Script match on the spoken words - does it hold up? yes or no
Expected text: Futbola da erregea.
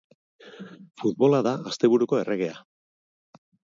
no